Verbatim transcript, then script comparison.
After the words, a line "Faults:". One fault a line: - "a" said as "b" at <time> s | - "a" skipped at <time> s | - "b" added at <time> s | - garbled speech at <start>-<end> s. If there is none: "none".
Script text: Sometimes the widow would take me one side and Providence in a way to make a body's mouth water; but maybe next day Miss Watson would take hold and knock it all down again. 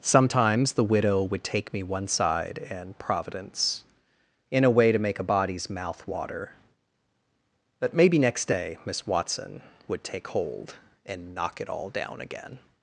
Sometimes the widow would take me one side and Providence in a way to make a body's mouth water; but maybe next day Miss Watson would take hold and knock it all down again.
Faults:
none